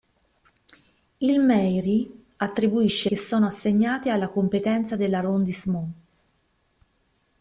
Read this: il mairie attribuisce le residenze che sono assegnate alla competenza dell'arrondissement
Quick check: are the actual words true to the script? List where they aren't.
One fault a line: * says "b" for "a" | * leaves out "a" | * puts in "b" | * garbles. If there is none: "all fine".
* leaves out "le residenze"